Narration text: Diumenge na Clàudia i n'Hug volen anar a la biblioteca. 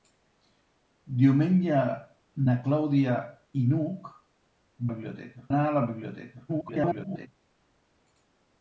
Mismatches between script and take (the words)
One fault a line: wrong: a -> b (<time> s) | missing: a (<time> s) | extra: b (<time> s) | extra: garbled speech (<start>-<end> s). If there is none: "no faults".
wrong: volen -> biblioteca (4.9 s)
extra: garbled speech (6.5-7.3 s)